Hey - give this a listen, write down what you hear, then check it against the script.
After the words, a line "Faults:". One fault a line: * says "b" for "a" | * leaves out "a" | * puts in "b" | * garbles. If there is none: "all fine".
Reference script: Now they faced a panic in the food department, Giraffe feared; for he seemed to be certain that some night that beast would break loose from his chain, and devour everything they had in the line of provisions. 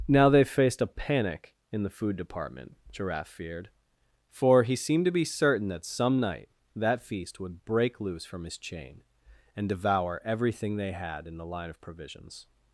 Now they faced a panic in the food department, Giraffe feared; for he seemed to be certain that some night that feast would break loose from his chain, and devour everything they had in the line of provisions.
Faults:
* says "feast" for "beast"